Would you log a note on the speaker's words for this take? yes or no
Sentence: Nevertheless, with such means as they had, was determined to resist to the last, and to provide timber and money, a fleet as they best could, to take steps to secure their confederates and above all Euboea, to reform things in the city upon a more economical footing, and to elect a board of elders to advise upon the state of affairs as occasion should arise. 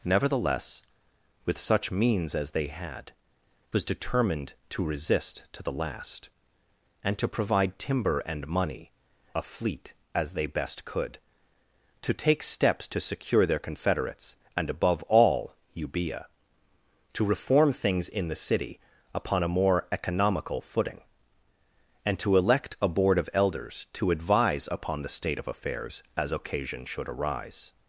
no